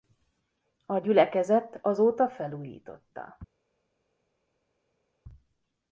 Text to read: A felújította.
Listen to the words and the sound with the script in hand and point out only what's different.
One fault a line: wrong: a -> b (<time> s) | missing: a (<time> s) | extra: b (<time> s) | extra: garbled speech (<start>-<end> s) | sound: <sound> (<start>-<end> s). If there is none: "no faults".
extra: gyülekezet azóta (0.9 s)